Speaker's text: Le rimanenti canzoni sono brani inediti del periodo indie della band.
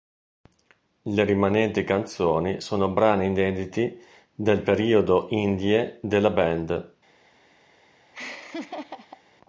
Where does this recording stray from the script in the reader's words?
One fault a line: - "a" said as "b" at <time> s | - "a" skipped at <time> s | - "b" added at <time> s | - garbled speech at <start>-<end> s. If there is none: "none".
none